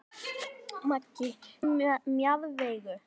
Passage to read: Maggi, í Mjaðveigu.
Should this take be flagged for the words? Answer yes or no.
no